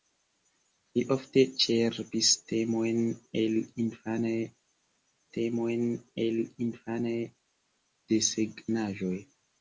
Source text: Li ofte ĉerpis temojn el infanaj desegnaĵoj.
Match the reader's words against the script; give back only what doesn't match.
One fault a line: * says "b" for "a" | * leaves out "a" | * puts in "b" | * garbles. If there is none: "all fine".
* puts in "temojn el infanaj"